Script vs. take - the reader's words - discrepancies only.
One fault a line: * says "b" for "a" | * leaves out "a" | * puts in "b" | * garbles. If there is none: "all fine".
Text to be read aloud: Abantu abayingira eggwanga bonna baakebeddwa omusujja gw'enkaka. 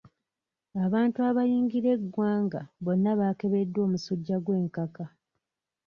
all fine